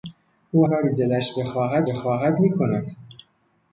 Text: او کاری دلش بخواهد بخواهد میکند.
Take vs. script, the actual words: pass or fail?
pass